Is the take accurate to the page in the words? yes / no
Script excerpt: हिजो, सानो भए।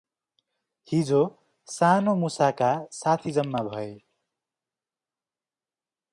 no